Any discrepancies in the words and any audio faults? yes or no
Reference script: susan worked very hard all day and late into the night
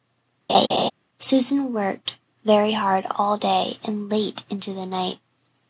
yes